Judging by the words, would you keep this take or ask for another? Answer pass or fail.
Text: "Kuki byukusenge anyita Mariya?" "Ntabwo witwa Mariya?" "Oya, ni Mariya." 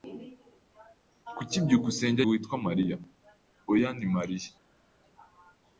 fail